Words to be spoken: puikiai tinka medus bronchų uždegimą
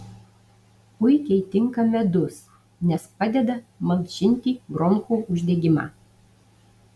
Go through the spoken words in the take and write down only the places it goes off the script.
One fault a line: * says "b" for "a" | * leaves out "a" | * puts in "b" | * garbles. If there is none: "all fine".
* puts in "nes padeda malšinti"